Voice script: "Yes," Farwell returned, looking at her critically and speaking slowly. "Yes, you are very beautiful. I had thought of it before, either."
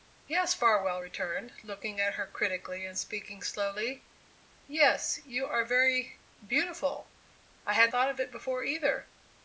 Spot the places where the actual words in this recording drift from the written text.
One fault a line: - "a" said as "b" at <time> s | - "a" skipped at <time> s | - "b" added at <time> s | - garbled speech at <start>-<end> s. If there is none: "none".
none